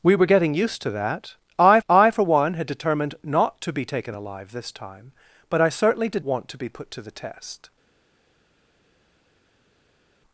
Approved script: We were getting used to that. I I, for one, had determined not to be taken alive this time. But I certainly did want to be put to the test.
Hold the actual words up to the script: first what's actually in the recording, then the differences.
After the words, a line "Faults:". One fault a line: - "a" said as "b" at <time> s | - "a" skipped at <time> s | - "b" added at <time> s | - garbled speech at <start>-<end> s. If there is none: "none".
We were getting used to that. I I, for one, had determined not to be taken alive this time. But I certainly did want to be put to the test.
Faults:
none